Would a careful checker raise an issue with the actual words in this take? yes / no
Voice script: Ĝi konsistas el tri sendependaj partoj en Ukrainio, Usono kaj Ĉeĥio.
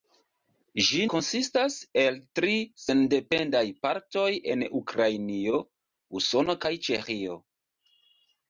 no